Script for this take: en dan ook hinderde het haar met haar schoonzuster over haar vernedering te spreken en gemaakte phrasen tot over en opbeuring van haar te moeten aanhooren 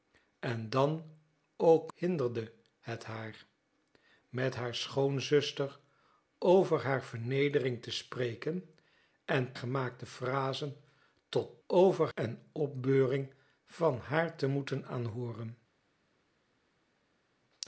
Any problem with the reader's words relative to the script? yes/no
no